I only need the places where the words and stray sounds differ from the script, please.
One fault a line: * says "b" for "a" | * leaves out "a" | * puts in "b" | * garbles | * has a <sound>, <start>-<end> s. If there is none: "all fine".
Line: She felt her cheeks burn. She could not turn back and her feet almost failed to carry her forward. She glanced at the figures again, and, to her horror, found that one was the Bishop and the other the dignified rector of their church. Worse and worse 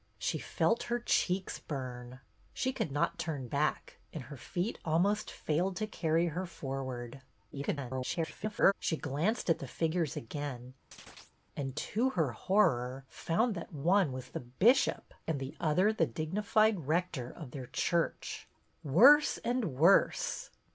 * garbles
* has a chirp, 10.9-11.4 s